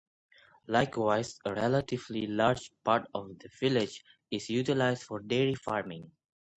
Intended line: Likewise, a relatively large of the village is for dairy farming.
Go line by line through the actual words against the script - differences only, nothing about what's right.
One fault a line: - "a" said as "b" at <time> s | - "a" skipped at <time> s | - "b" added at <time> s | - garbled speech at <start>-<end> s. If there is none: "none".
- "part" added at 2.8 s
- "utilized" added at 4.5 s